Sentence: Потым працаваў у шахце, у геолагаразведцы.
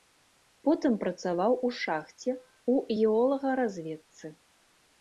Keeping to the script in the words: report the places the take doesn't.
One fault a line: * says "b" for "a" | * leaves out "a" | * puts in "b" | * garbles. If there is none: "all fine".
all fine